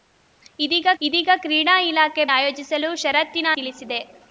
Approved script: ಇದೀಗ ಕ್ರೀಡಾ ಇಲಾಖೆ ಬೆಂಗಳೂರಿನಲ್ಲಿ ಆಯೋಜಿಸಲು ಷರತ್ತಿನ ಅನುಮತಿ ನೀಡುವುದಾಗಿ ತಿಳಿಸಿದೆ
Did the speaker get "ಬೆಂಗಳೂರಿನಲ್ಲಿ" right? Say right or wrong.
wrong